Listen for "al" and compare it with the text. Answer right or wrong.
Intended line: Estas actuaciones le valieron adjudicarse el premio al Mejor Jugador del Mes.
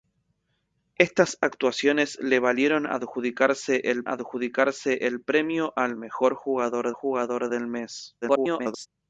right